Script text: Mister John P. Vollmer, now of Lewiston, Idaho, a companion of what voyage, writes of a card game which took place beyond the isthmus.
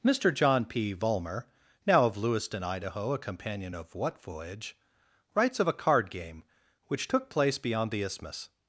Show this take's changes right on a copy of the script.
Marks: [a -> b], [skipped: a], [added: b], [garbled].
Mister John P. Vollmer, now of Lewiston, Idaho, a companion of what voyage, writes of a card game which took place beyond the isthmus.